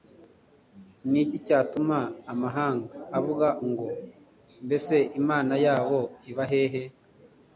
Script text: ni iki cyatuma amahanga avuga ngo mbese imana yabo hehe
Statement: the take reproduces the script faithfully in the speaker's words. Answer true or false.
false